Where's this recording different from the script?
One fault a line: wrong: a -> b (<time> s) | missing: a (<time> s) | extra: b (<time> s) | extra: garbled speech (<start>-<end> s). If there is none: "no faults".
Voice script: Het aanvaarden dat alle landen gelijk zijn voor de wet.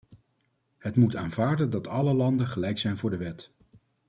extra: moet (0.9 s)